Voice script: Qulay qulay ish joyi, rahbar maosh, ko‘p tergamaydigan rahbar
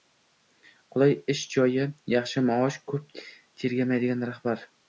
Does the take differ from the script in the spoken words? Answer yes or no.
yes